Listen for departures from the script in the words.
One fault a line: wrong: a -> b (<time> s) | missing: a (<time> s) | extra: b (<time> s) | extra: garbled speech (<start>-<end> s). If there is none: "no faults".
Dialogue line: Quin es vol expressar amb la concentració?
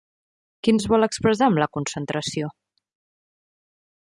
no faults